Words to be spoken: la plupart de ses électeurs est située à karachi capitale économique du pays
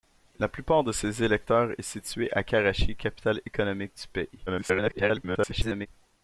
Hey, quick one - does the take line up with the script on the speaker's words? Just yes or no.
no